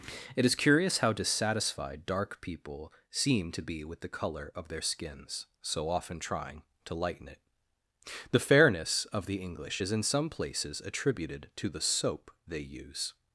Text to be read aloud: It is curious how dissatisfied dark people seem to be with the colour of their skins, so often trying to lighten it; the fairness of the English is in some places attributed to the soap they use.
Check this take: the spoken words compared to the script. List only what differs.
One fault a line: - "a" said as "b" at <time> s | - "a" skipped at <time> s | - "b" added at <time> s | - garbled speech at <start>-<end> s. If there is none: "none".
none